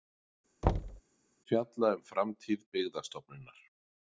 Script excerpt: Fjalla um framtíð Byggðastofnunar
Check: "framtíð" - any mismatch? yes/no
no